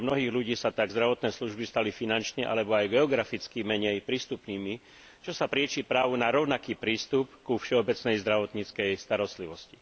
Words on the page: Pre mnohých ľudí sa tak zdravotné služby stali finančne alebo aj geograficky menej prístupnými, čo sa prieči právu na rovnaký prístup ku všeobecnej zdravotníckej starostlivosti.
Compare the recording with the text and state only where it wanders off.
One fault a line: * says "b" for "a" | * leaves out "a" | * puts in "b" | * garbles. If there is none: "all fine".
all fine